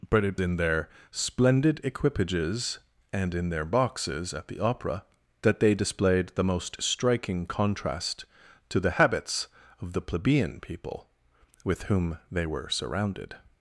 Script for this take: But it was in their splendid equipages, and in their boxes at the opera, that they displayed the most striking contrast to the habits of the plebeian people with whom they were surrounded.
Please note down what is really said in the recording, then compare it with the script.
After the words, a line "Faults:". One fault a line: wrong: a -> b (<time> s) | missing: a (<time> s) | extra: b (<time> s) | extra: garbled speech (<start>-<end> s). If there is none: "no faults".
But it in their splendid equipages, and in their boxes at the opera, that they displayed the most striking contrast to the habits of the plebeian people with whom they were surrounded.
Faults:
missing: was (0.4 s)